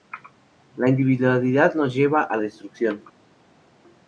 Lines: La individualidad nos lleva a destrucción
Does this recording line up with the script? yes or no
yes